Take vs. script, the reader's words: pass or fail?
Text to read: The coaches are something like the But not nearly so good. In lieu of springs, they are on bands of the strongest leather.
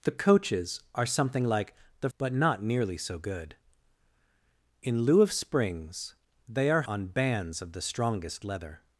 pass